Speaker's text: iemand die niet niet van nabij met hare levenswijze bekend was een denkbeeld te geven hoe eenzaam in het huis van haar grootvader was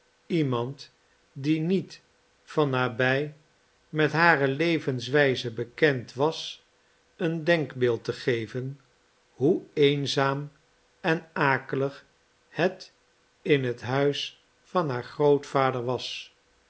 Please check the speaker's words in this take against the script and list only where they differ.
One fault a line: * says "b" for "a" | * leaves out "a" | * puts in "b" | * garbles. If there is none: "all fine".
* leaves out "niet"
* puts in "en akelig het"